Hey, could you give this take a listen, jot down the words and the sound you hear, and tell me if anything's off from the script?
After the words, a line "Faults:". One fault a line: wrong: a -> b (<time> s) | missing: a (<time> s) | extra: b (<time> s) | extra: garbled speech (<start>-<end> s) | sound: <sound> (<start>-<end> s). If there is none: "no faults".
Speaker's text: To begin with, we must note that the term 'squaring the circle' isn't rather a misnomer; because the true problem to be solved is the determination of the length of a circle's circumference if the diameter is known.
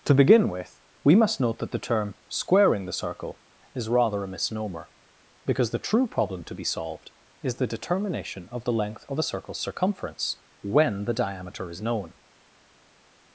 To begin with, we must note that the term 'squaring the circle' is rather a misnomer; because the true problem to be solved is the determination of the length of a circle's circumference when the diameter is known.
Faults:
wrong: isn't -> is (3.8 s)
wrong: if -> when (10.6 s)